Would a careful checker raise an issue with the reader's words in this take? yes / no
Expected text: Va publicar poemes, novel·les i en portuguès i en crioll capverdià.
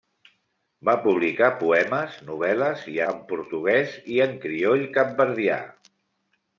no